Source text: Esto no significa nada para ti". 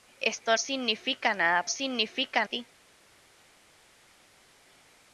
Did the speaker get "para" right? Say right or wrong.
wrong